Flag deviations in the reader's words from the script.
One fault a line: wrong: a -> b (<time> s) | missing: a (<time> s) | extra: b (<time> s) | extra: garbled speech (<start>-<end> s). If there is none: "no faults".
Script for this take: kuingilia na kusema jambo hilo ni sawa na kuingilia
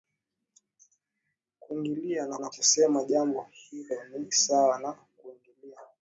extra: na (2.4 s)